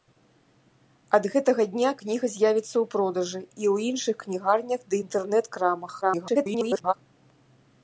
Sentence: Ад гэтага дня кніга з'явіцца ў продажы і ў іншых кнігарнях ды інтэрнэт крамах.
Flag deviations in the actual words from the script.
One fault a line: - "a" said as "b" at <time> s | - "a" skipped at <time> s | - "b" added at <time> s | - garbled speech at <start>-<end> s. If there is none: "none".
- garbled speech at 6.0-6.9 s